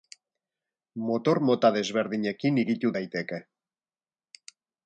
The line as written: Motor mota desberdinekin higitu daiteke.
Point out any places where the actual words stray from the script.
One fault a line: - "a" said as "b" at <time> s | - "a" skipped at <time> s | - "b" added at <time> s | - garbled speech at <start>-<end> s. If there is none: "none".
none